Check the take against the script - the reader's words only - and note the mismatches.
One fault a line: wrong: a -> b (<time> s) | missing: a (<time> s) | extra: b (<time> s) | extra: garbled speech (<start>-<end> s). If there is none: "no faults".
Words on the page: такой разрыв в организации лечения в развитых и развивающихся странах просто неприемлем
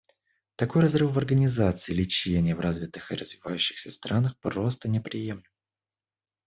no faults